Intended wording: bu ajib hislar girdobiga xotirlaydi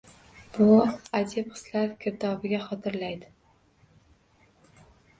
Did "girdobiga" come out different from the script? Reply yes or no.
no